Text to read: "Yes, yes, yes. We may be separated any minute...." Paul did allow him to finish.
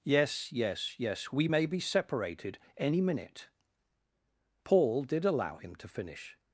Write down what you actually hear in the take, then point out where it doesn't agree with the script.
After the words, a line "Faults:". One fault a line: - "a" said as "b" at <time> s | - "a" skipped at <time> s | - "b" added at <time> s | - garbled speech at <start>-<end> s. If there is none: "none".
"Yes, yes, yes. We may be separated any minute...." Paul did allow him to finish.
Faults:
none